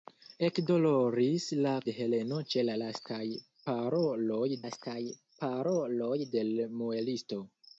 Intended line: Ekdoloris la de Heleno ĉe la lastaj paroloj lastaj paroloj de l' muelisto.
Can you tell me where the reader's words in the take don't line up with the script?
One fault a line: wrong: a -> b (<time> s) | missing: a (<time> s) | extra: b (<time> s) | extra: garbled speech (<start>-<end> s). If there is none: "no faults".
no faults